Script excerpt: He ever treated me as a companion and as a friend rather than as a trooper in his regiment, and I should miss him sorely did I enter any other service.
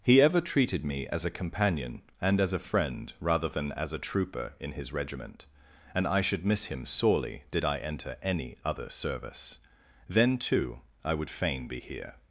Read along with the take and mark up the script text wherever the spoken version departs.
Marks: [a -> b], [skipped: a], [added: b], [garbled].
He ever treated me as a companion and as a friend rather than as a trooper in his regiment, and I should miss him sorely did I enter any other service. [added: Then too I would fain be here]